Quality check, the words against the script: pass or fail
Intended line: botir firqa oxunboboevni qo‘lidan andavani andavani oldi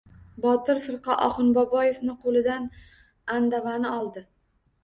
fail